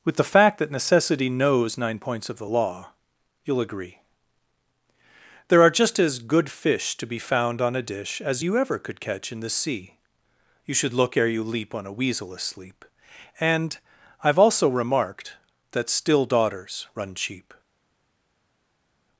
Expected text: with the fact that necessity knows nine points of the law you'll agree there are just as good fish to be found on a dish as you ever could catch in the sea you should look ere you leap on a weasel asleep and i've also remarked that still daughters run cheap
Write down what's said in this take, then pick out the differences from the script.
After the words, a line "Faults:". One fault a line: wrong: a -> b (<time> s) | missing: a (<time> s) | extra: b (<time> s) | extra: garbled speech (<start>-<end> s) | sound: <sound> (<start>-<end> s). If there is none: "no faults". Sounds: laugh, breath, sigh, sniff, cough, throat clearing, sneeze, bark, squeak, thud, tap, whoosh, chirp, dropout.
with the fact that necessity knows nine points of the law you'll agree there are just as good fish to be found on a dish as you ever could catch in the sea you should look ere you leap on a weasel asleep and i've also remarked that still daughters run cheap
Faults:
no faults